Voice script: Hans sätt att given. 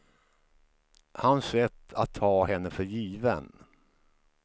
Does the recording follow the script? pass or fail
fail